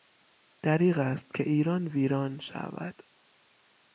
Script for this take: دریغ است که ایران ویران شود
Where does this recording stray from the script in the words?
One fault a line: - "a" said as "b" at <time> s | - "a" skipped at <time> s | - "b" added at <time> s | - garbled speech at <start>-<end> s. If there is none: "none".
none